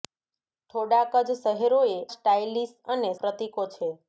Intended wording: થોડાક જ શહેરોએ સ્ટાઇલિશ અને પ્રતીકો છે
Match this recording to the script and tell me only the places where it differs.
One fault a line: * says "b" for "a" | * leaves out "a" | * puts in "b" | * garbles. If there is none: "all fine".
all fine